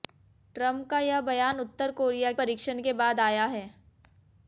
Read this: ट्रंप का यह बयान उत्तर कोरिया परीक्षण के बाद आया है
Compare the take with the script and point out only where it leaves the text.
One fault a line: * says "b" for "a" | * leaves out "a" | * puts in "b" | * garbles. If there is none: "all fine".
all fine